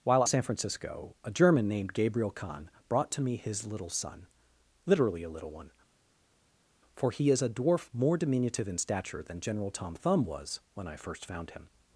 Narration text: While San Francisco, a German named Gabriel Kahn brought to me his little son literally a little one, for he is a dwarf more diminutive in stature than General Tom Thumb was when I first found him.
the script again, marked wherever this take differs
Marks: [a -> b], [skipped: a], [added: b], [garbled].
While San Francisco, a German named Gabriel Kahn brought to me his little son literally a little one, for he is a dwarf more diminutive in stature than General Tom Thumb was when I first found him.